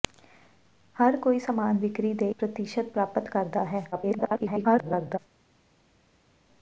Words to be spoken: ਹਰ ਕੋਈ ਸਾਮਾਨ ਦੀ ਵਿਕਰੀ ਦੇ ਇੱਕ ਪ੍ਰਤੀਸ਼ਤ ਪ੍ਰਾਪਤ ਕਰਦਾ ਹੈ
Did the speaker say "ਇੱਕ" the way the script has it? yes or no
no